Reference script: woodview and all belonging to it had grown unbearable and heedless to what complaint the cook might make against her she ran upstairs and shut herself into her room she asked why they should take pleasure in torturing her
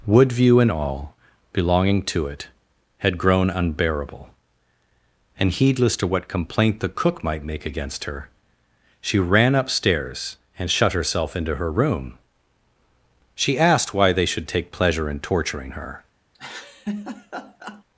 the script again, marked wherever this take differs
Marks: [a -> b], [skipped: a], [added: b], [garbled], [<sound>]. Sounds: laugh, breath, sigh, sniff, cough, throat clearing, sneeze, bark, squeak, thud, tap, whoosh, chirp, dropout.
woodview and all belonging to it had grown unbearable and heedless to what complaint the cook might make against her she ran upstairs and shut herself into her room she asked why they should take pleasure in torturing her [laugh]